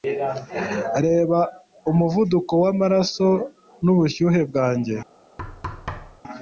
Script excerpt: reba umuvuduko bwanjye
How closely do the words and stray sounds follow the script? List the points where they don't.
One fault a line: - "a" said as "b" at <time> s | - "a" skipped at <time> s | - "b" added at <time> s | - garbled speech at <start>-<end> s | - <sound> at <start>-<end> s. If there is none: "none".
- "w'amaraso n'ubushyuhe" added at 2.6 s
- thud at 5.4-6.2 s